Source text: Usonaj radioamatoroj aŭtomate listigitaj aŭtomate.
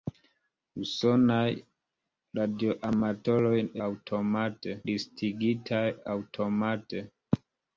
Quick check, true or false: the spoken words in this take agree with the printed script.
true